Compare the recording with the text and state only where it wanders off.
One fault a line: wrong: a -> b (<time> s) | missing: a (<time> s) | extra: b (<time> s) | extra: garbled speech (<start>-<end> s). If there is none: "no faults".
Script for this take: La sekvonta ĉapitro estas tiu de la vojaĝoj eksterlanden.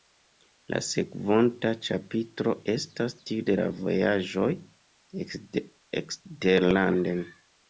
no faults